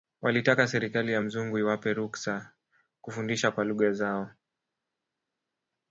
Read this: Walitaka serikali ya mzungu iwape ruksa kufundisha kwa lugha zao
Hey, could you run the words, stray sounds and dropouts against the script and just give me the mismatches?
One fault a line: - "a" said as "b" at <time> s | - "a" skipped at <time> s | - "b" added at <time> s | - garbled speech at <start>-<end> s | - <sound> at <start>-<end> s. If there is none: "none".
none